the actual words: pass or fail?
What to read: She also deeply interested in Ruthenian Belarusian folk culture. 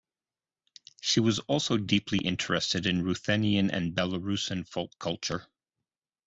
fail